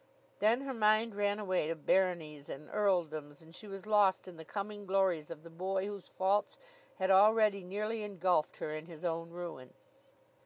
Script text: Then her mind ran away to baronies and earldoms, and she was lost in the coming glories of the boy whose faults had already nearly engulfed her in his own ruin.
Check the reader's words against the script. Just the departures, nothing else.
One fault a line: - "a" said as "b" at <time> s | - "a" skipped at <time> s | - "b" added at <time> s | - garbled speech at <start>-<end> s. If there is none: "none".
none